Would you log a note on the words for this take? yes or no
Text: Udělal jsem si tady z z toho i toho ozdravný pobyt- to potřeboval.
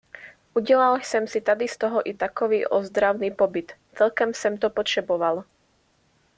yes